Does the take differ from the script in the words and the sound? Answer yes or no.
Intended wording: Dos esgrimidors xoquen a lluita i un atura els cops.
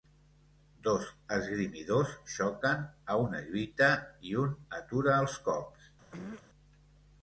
yes